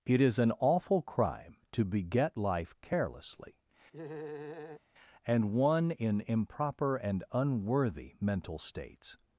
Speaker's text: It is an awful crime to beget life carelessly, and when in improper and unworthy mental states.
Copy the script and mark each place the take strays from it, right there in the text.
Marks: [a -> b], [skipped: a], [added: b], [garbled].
It is an awful crime to beget life carelessly, and [when -> one] in improper and unworthy mental states.